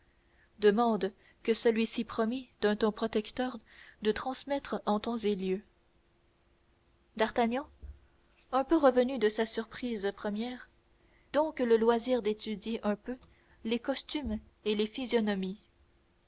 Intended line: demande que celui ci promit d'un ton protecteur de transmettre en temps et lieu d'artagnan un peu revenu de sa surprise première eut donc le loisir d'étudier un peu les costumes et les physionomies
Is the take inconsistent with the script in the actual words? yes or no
yes